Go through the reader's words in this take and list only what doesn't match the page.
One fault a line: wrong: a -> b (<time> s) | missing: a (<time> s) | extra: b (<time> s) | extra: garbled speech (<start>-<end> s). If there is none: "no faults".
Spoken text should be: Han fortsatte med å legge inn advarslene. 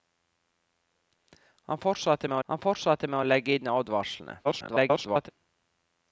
extra: han fortsatte med (2.5 s)
extra: garbled speech (4.4-5.3 s)